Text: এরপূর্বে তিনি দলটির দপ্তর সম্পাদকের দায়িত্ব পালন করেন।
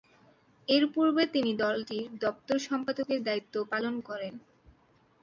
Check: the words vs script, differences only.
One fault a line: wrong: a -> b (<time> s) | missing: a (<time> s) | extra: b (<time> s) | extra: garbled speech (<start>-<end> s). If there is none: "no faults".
no faults